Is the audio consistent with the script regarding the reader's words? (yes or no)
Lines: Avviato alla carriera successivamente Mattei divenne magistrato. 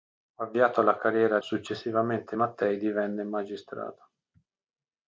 yes